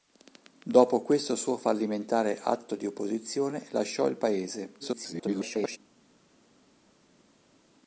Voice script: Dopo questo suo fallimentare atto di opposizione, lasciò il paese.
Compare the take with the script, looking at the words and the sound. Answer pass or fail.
fail